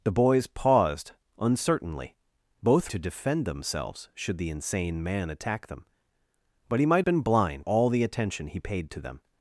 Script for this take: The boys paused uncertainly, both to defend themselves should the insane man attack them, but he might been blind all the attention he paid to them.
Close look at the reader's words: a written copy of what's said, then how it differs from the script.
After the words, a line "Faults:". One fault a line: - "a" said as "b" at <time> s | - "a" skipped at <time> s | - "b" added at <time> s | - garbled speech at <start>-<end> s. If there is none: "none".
The boys paused uncertainly, both to defend themselves should the insane man attack them, but he might been blind all the attention he paid to them.
Faults:
none